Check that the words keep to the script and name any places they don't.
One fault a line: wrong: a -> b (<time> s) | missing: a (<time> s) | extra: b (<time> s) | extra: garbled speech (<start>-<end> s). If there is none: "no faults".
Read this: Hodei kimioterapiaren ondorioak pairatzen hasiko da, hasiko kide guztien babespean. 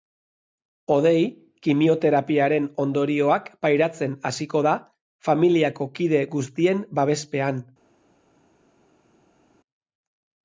wrong: hasiko -> familiako (5.3 s)